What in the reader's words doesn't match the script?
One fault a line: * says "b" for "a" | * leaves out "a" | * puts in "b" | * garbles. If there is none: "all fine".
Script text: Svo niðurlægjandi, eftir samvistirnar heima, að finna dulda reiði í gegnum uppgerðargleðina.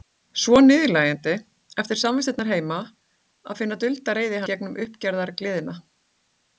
all fine